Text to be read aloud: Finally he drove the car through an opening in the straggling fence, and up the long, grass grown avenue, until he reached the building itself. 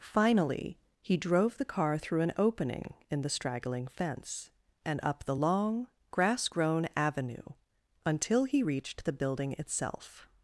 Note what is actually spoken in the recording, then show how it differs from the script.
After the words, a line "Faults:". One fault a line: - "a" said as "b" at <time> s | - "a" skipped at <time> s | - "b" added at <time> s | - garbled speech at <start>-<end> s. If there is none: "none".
Finally he drove the car through an opening in the straggling fence, and up the long, grass grown avenue, until he reached the building itself.
Faults:
none